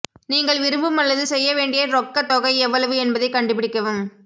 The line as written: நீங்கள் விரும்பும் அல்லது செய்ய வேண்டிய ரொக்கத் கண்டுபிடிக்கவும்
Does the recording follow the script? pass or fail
fail